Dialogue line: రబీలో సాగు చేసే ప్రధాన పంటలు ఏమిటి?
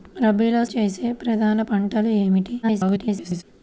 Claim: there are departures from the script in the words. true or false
true